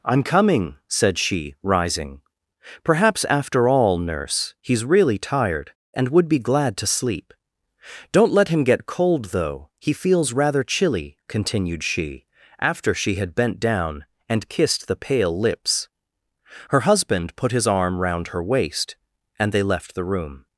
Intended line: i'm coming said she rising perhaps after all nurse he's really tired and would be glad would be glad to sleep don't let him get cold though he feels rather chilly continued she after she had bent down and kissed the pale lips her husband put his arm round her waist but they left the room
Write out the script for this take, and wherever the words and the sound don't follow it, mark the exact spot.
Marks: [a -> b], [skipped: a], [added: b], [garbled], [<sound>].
i'm coming said she rising perhaps after all nurse he's really tired and would be glad [skipped: would be glad] to sleep don't let him get cold though he feels rather chilly continued she after she had bent down and kissed the pale lips her husband put his arm round her waist [but -> and] they left the room